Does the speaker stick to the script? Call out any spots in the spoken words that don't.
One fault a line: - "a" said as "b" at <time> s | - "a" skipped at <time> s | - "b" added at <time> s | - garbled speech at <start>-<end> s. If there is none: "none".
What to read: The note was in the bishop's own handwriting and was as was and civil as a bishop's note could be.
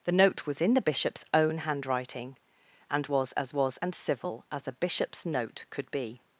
none